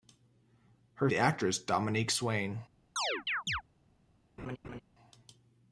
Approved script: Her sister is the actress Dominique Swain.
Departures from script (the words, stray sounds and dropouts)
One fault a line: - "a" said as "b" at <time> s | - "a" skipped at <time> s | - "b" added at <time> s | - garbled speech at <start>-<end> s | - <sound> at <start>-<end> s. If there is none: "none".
- "sister is" skipped at 1.1 s
- chirp at 3.0-3.6 s
- laugh at 4.4-4.8 s